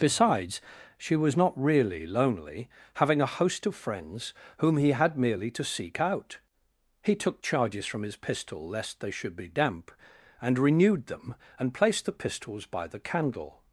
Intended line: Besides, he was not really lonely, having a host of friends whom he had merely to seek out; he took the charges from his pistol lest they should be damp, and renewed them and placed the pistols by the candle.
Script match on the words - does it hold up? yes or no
no